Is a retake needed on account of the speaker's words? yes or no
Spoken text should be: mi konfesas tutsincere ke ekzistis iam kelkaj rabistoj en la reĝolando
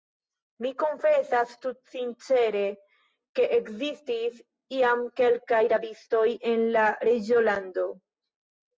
no